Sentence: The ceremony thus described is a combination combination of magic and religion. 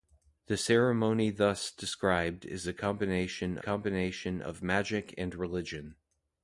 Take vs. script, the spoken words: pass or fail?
pass